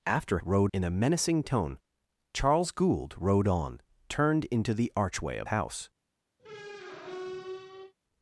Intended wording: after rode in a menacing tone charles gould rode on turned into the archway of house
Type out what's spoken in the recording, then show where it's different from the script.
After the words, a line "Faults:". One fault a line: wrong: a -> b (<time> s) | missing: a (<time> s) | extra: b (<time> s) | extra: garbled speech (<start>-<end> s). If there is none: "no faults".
after rode in a menacing tone charles gould rode on turned into the archway of house
Faults:
no faults